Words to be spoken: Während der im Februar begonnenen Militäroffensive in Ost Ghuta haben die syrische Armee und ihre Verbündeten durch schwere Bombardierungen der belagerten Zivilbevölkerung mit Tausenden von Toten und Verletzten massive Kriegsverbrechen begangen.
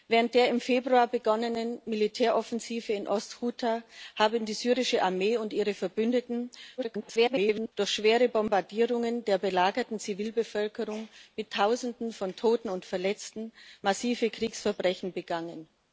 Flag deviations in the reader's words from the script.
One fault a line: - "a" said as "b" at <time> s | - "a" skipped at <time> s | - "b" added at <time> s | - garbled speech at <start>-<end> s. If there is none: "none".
- garbled speech at 6.8-7.7 s